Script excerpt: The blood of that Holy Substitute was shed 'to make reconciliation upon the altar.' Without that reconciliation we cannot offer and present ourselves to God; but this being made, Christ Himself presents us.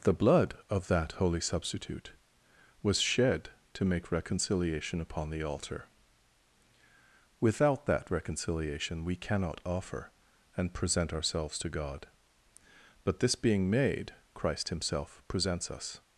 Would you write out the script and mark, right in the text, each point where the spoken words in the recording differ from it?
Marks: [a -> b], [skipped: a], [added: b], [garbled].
The blood of that Holy Substitute was shed 'to make reconciliation upon the altar.' Without that reconciliation we cannot offer and present ourselves to God; but this being made, Christ Himself presents us.